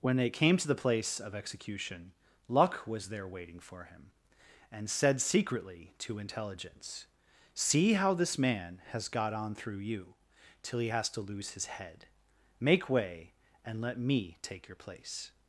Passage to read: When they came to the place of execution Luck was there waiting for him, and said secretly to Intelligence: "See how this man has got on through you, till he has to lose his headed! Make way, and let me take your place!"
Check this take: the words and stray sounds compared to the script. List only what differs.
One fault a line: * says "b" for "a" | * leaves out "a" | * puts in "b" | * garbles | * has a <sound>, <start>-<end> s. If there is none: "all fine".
* says "head" for "headed"